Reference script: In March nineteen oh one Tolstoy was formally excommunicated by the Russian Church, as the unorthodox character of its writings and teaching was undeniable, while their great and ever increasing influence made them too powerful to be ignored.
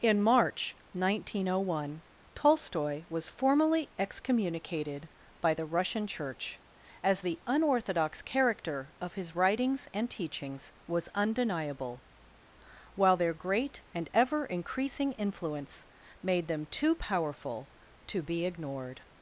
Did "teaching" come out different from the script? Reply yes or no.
yes